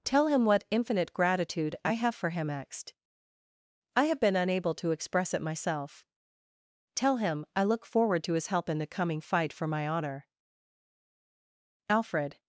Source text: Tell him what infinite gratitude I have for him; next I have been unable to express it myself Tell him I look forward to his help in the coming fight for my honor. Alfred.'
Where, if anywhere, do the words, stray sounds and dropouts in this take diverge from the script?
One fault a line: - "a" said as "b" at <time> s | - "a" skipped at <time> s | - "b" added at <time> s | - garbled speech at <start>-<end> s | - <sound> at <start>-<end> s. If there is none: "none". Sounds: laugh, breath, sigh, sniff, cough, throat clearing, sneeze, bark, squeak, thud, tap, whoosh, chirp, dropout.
none